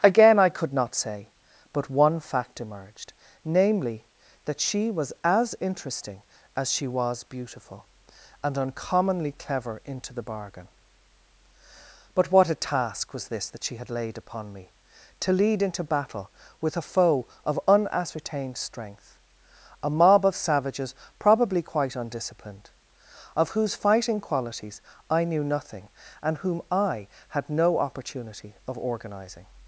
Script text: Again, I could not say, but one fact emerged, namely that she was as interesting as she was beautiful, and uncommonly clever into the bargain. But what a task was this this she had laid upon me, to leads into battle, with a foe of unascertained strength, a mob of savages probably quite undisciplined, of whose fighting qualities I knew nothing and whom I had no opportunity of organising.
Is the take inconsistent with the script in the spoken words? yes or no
yes